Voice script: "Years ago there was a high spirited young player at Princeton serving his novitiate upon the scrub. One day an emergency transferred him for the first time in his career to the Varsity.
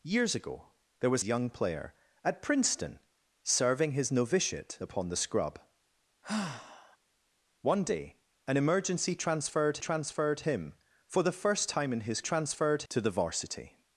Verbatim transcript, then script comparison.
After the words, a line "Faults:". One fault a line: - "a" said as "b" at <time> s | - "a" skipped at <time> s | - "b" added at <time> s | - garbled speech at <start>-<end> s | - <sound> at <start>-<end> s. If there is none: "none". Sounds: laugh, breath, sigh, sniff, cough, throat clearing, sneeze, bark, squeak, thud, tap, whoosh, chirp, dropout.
"Years ago there was young player at Princeton serving his novitiate upon the scrub. One day an emergency transferred transferred him for the first time in his transferred to the Varsity.
Faults:
- "a high spirited" skipped at 1.2 s
- sigh at 6.2-7.0 s
- "transferred" added at 9.8 s
- "career" said as "transferred" at 12.2 s